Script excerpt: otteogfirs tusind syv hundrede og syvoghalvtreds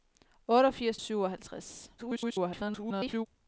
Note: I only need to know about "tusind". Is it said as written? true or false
false